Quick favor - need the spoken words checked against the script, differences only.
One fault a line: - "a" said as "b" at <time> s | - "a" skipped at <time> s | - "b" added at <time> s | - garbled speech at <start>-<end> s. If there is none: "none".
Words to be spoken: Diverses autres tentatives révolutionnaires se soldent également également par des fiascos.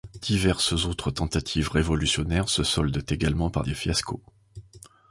- "également" skipped at 3.5 s